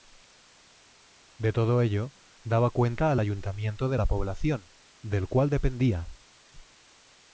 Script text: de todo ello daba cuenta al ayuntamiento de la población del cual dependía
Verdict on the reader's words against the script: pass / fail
pass